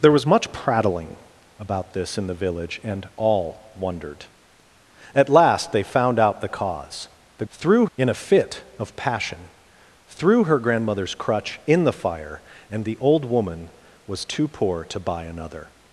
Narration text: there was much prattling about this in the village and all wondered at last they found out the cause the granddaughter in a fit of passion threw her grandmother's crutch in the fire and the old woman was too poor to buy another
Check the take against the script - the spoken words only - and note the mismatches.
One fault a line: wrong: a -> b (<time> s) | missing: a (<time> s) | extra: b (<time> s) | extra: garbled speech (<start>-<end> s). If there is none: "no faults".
wrong: granddaughter -> threw (7.5 s)